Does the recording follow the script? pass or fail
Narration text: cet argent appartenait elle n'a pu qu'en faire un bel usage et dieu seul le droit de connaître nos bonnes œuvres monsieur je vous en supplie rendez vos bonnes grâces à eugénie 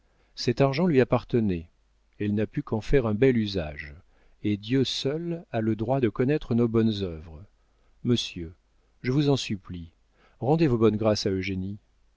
fail